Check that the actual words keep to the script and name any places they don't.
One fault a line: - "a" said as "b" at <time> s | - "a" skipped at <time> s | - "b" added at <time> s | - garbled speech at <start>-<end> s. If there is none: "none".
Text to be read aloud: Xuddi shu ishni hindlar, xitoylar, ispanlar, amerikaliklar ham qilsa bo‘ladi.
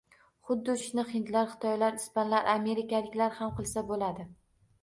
- "shu" skipped at 0.7 s